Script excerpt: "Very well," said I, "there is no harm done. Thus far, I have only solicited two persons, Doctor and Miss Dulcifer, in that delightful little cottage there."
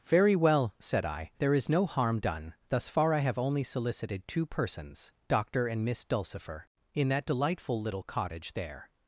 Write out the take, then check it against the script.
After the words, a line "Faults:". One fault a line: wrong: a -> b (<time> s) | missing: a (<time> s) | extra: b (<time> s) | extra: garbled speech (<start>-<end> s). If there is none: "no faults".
"Very well," said I, "there is no harm done. Thus far, I have only solicited two persons, Doctor and Miss Dulcifer, in that delightful little cottage there."
Faults:
no faults